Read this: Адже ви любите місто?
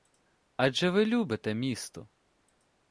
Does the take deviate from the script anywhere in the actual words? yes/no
no